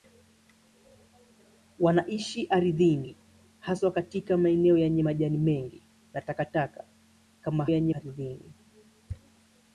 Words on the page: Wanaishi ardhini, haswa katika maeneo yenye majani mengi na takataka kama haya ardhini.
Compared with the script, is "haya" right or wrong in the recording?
wrong